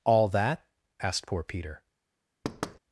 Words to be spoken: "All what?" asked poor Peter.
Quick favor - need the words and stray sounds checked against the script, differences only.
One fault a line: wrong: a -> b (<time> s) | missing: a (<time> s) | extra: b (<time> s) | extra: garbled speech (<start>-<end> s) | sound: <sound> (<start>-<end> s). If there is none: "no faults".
wrong: what -> that (0.3 s)
sound: thud (2.4-2.8 s)